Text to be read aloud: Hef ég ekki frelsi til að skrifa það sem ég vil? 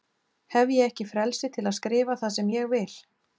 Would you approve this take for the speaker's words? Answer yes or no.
yes